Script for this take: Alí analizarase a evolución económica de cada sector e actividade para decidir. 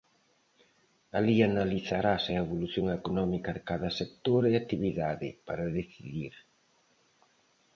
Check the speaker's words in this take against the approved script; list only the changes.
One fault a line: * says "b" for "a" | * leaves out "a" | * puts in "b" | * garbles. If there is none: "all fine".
all fine